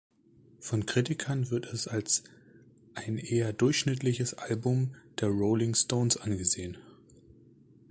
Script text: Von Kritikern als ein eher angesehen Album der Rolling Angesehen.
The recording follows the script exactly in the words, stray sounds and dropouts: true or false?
false